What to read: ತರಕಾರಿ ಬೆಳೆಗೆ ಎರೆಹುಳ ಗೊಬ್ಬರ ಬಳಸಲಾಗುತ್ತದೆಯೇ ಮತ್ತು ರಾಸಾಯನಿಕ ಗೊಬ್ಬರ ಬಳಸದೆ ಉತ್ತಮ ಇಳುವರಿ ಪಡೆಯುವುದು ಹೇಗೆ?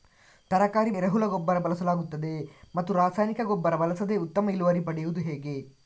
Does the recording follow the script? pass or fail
fail